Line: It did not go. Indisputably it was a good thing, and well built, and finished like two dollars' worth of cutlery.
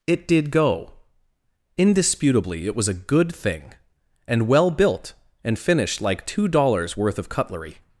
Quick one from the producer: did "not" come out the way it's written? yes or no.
no